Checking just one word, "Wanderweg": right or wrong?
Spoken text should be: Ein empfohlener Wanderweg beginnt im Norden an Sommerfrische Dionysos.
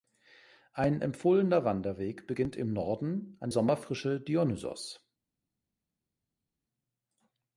right